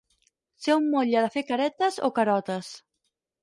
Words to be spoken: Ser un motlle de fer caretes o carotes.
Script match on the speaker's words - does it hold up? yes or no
yes